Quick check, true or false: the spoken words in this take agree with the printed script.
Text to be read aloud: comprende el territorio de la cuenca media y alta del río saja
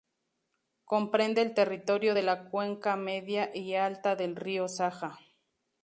true